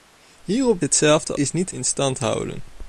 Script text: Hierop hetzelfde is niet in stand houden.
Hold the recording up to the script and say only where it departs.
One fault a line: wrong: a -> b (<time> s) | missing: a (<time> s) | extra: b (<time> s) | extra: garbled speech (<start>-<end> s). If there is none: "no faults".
no faults